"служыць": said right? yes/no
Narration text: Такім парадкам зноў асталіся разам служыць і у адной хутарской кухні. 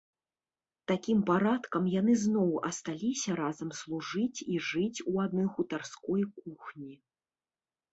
yes